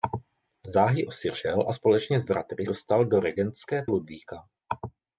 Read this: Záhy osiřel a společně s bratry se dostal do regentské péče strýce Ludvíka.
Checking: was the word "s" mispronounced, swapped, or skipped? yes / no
no